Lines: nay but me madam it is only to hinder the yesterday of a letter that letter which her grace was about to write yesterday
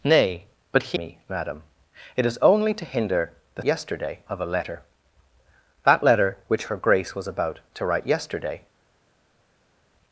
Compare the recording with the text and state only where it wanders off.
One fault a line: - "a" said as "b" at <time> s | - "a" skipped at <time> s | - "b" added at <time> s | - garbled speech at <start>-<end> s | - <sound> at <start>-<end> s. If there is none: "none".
none